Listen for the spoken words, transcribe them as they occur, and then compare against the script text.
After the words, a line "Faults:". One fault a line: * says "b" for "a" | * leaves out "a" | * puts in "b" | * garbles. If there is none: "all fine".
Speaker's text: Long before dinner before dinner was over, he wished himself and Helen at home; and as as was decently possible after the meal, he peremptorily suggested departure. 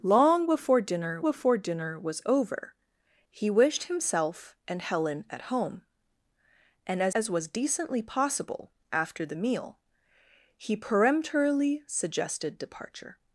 Long before dinner before dinner was over, he wished himself and Helen at home; and as as was decently possible after the meal, he peremptorily suggested departure.
Faults:
all fine